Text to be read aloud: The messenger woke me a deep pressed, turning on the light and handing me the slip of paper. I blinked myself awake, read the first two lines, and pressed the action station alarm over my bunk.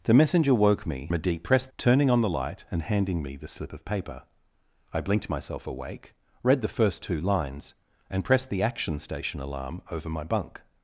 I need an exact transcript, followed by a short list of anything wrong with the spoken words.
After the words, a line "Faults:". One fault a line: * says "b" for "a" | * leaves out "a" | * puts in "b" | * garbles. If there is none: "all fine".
The messenger woke me a deep pressed, turning on the light and handing me the slip of paper. I blinked myself awake, read the first two lines, and pressed the action station alarm over my bunk.
Faults:
all fine